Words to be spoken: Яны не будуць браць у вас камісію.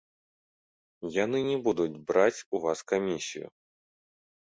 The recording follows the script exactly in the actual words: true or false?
true